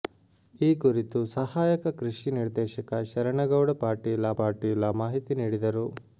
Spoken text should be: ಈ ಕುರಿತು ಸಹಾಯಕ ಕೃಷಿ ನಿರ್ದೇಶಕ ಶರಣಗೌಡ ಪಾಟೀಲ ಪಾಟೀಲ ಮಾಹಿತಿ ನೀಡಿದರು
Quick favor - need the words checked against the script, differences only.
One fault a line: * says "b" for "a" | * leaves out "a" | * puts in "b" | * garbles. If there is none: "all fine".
all fine